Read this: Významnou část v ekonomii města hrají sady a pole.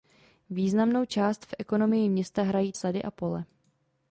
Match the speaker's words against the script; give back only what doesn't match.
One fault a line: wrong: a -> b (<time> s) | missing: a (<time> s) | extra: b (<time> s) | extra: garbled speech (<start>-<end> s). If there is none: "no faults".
no faults